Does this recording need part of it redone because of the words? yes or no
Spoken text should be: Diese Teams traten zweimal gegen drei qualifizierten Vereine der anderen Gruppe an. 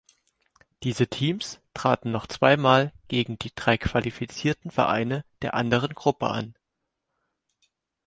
yes